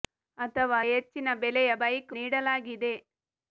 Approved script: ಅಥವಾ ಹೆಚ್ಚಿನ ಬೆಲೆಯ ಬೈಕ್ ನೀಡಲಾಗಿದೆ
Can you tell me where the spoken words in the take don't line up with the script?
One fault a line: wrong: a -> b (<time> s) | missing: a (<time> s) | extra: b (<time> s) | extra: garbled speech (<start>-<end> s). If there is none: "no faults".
no faults